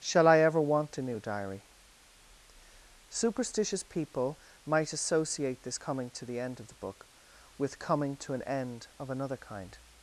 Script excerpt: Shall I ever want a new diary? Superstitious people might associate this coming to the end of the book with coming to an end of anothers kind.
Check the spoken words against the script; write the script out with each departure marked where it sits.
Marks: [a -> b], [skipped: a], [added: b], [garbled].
Shall I ever want a new diary? Superstitious people might associate this coming to the end of the book with coming to an end of [anothers -> another] kind.